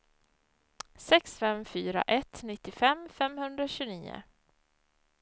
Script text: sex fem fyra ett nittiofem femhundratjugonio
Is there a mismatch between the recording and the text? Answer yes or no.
no